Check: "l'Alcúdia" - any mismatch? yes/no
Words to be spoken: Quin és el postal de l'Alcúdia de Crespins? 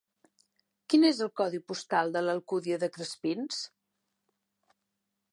no